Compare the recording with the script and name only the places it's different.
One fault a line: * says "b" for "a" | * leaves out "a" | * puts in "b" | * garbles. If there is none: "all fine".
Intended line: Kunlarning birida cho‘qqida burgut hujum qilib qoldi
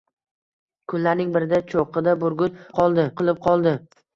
* says "qoldi" for "hujum"